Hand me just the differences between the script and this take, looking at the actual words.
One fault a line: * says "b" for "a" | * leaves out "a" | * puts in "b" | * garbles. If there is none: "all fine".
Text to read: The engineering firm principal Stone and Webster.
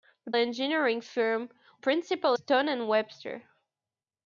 all fine